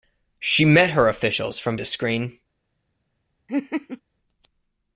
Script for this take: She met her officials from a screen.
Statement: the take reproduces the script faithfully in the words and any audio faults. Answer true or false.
false